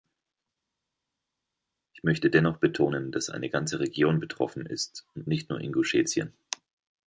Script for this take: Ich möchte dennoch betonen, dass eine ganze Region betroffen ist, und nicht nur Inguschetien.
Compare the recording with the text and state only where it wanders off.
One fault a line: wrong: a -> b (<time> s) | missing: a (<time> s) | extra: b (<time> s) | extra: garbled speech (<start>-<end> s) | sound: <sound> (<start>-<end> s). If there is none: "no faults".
no faults